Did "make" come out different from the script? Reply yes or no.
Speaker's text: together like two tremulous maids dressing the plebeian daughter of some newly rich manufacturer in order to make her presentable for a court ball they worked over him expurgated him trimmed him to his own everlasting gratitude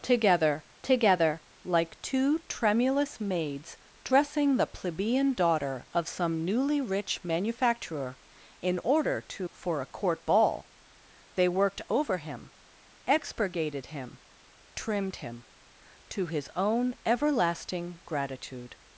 yes